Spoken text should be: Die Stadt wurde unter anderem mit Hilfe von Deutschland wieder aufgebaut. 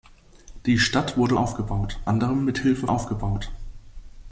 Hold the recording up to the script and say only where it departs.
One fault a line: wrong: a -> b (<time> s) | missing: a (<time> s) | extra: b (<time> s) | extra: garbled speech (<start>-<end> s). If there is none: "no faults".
wrong: unter -> aufgebaut (1.4 s)
missing: von Deutschland wieder (2.9 s)